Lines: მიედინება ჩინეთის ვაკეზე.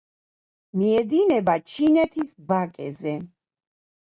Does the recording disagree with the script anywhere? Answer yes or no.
no